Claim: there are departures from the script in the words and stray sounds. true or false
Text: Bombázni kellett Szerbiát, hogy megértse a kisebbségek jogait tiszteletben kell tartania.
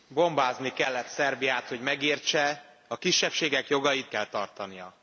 true